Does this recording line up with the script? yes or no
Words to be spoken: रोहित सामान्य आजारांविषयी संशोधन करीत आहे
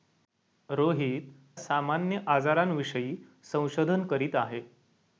yes